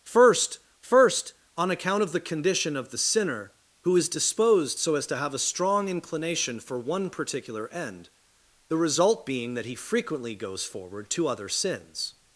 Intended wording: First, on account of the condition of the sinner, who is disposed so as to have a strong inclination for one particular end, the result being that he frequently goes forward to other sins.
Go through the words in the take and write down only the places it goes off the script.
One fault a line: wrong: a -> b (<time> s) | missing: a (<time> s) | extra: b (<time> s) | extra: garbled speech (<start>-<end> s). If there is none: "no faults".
extra: first (0.8 s)